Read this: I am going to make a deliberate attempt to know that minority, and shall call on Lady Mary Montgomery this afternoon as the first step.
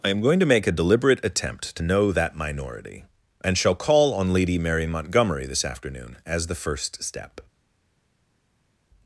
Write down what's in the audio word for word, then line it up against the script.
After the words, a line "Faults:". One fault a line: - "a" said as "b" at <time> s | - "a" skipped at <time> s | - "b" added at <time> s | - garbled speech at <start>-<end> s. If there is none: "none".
I am going to make a deliberate attempt to know that minority, and shall call on Lady Mary Montgomery this afternoon as the first step.
Faults:
none